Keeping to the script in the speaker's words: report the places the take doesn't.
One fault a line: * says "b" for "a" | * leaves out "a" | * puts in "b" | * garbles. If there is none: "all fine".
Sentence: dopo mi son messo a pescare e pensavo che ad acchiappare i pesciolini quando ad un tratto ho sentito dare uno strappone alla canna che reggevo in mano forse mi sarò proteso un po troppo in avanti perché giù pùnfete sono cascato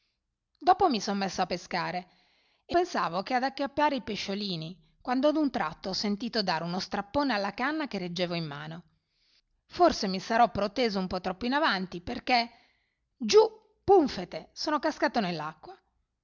all fine